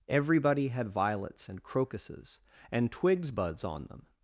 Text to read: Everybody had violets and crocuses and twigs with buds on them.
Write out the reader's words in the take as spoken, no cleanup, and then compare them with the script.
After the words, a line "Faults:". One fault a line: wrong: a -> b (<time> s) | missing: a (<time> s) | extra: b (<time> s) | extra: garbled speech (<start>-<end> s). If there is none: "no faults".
Everybody had violets and crocuses and twigs buds on them.
Faults:
missing: with (3.3 s)